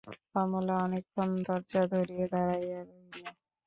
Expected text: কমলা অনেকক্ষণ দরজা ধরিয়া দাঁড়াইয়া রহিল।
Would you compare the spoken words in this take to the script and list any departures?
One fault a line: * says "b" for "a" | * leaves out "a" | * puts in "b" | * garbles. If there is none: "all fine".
all fine